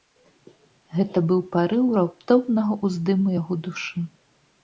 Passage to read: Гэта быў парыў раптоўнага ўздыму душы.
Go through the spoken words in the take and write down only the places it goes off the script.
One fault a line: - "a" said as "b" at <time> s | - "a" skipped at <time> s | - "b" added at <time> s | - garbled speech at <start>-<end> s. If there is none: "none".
- "яго" added at 3.4 s